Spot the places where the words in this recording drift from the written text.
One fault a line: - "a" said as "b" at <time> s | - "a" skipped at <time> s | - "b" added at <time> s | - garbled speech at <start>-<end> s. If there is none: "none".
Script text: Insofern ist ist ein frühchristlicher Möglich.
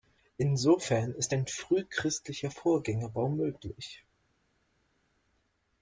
- "ist" skipped at 1.4 s
- "Vorgängerbau" added at 2.5 s